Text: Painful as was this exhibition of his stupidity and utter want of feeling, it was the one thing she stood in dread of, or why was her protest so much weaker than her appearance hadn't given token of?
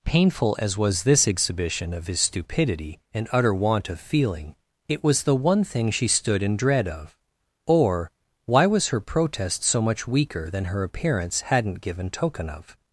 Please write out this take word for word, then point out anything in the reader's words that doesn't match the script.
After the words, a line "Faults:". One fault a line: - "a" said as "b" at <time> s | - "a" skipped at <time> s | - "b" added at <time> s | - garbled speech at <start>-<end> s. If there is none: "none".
Painful as was this exhibition of his stupidity and utter want of feeling, it was the one thing she stood in dread of, or why was her protest so much weaker than her appearance hadn't given token of?
Faults:
none